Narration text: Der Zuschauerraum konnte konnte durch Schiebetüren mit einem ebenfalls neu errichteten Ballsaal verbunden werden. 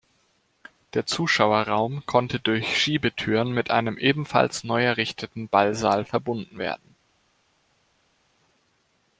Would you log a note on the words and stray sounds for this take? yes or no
yes